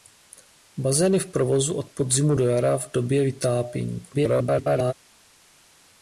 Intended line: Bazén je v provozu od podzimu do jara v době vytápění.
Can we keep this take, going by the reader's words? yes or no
no